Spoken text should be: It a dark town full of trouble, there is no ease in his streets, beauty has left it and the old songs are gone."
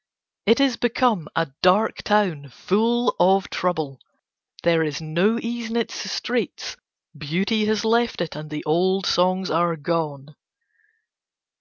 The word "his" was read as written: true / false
false